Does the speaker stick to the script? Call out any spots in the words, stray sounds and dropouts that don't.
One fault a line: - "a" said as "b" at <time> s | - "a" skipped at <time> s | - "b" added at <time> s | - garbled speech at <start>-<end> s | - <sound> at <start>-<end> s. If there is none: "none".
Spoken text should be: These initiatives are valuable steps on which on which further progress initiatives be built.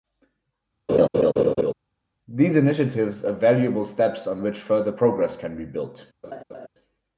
- laugh at 0.9-1.7 s
- "on which" skipped at 4.6 s
- "initiatives" said as "can" at 5.4 s
- laugh at 6.2-6.7 s